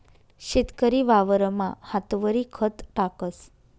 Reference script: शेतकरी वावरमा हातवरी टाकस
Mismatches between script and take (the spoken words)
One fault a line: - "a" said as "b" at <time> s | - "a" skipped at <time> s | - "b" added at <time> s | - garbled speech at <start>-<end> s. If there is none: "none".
- "खत" added at 2.5 s